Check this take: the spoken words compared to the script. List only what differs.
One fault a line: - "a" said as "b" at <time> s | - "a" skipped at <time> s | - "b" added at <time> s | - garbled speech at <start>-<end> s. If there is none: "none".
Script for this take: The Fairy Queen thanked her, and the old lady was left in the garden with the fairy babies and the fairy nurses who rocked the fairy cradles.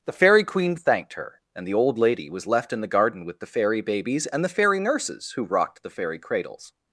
none